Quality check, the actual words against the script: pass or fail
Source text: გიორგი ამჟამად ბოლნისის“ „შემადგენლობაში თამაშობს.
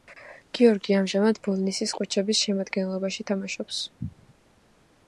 fail